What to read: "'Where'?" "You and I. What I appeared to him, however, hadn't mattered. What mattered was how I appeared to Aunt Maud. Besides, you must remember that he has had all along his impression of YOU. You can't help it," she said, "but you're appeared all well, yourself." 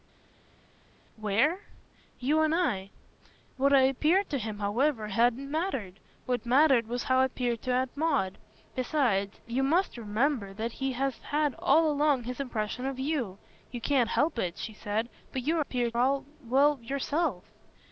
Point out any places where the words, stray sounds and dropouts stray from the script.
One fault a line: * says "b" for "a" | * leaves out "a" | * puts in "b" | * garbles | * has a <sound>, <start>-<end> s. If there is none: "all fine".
all fine